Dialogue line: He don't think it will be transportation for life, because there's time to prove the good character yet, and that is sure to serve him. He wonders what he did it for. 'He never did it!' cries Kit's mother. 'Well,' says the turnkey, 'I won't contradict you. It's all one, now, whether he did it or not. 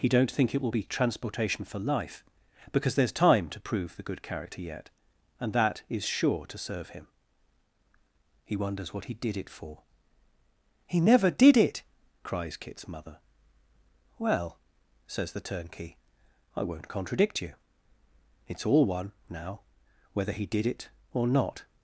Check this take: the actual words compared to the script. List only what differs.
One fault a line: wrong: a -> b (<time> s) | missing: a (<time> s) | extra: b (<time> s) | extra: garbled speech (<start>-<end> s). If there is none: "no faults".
no faults